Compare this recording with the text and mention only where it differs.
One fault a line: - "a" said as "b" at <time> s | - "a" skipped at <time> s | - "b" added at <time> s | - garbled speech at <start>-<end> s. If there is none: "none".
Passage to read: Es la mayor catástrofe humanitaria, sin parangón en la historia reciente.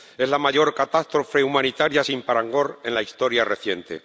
none